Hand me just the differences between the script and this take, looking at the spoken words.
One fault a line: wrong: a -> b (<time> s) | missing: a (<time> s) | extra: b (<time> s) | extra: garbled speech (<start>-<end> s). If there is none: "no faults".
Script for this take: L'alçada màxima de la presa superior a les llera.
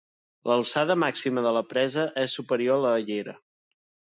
extra: és (2.2 s)
wrong: les -> la (2.9 s)